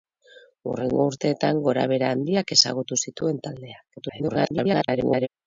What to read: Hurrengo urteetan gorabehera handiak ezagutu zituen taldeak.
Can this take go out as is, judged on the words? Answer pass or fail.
fail